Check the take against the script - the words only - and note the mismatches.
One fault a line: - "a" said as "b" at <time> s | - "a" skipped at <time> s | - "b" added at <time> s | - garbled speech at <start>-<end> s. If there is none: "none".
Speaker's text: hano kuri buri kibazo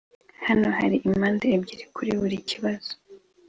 - "hari impande ebyiri" added at 0.8 s